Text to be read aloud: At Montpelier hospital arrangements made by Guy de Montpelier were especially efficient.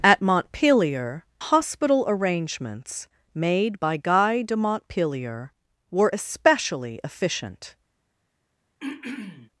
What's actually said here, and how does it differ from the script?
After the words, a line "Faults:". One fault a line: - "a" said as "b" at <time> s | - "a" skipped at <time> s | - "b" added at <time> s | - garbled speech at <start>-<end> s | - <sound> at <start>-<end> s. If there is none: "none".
At Montpelier hospital arrangements made by Guy de Montpelier were especially efficient.
Faults:
- throat clearing at 8.8-9.5 s